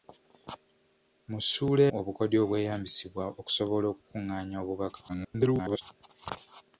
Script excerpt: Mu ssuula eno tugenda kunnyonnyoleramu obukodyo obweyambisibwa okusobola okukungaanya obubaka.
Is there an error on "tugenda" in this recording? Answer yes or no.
yes